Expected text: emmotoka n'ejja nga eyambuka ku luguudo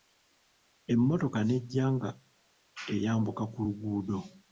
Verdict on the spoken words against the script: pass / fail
pass